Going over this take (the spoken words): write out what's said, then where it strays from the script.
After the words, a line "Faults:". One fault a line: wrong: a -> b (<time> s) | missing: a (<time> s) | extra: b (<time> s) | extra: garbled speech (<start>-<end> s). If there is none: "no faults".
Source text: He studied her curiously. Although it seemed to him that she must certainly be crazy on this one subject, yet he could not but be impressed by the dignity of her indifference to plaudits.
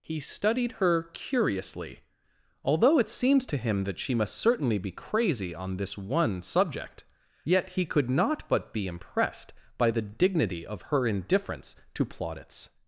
He studied her curiously. Although it seems to him that she must certainly be crazy on this one subject, yet he could not but be impressed by the dignity of her indifference to plaudits.
Faults:
wrong: seemed -> seems (3.1 s)